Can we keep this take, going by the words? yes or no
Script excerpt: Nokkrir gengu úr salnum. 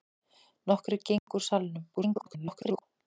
no